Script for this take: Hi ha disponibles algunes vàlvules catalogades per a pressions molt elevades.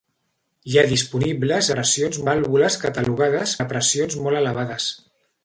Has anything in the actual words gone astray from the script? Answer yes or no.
yes